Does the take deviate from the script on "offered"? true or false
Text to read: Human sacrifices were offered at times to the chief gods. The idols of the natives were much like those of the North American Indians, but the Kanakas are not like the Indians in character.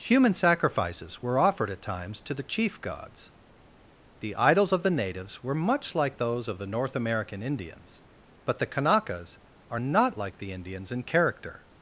false